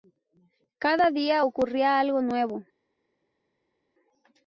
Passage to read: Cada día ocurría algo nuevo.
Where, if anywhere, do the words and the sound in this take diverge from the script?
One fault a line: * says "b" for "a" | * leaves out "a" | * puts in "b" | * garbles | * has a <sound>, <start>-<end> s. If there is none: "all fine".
all fine